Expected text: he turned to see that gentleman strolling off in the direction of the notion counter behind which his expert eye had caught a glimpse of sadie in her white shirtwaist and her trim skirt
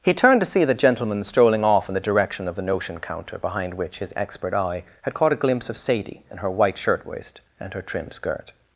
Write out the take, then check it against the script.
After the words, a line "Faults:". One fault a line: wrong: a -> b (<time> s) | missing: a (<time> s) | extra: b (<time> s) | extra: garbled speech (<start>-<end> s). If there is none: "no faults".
he turned to see the gentleman strolling off in the direction of the notion counter behind which his expert eye had caught a glimpse of sadie in her white shirtwaist and her trim skirt
Faults:
wrong: that -> the (0.7 s)